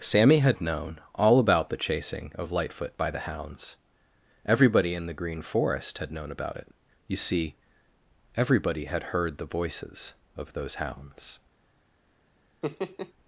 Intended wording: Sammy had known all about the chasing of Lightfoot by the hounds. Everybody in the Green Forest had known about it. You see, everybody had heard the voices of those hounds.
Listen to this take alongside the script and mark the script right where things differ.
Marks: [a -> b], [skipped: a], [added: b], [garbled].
Sammy had known all about the chasing of Lightfoot by the hounds. Everybody in the Green Forest had known about it. You see, everybody had heard the voices of those hounds.